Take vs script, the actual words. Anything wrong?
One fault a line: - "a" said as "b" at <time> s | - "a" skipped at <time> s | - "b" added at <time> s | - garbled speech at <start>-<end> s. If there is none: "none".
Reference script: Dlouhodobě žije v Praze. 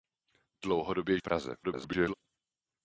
- "žije" skipped at 1.2 s
- garbled speech at 1.6-2.1 s